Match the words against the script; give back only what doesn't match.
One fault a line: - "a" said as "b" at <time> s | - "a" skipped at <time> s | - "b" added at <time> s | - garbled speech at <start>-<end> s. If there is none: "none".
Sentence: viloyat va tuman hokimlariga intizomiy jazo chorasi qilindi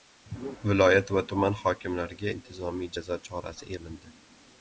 none